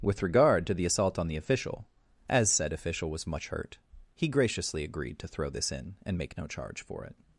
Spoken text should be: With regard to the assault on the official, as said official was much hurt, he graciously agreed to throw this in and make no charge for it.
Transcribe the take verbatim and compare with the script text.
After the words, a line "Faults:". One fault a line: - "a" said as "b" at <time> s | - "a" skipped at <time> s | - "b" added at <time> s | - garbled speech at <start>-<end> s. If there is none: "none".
With regard to the assault on the official, as said official was much hurt, he graciously agreed to throw this in and make no charge for it.
Faults:
none